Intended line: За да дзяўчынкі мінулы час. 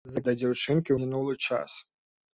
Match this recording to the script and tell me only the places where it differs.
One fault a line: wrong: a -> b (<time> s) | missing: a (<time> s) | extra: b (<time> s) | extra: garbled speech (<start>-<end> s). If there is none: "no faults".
no faults